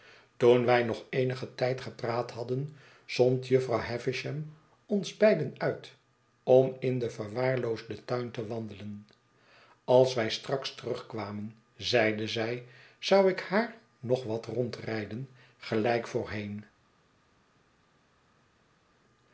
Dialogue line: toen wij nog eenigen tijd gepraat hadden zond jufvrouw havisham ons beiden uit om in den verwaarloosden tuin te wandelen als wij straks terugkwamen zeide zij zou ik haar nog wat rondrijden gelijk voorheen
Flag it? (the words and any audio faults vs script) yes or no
no